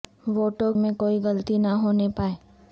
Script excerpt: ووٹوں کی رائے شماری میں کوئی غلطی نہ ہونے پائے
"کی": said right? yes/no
no